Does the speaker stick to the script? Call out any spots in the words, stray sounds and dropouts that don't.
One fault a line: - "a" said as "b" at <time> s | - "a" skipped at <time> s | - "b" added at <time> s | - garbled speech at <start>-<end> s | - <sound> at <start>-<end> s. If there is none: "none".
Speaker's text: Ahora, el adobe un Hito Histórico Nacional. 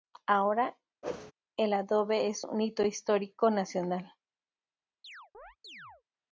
- whoosh at 1.0-1.3 s
- "es" added at 2.3 s
- chirp at 5.0-6.0 s